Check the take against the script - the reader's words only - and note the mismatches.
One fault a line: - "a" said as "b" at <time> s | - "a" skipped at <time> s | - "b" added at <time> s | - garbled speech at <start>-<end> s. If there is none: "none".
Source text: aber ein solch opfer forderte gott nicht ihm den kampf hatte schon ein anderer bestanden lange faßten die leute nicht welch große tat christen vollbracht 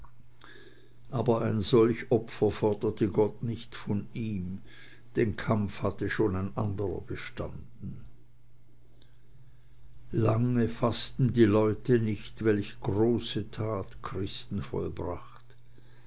- "von" added at 3.7 s